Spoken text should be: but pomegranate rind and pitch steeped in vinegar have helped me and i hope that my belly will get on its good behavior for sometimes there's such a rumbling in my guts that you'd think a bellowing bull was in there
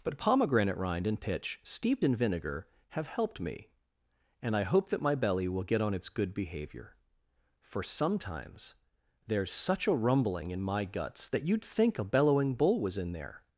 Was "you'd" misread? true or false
false